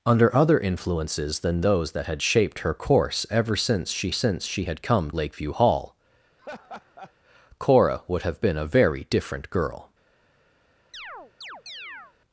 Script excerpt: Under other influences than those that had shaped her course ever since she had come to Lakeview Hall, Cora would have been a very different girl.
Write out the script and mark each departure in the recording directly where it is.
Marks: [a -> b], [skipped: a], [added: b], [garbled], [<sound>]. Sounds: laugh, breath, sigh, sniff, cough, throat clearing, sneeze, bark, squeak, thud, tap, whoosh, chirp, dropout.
Under other influences than those that had shaped her course ever since she [added: since she] had come [skipped: to] Lakeview Hall, [laugh] Cora would have been a very different girl. [chirp]